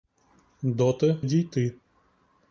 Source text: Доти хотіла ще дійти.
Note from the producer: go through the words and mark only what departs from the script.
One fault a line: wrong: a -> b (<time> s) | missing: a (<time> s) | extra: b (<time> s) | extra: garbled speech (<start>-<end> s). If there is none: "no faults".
missing: хотіла ще (1.2 s)